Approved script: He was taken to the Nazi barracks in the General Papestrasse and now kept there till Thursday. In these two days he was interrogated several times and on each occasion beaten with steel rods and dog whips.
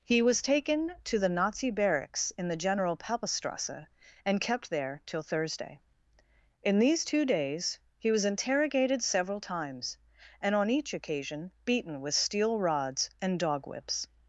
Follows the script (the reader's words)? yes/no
no